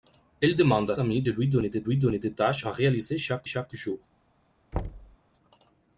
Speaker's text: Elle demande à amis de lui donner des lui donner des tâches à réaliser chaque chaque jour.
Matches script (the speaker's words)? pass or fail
pass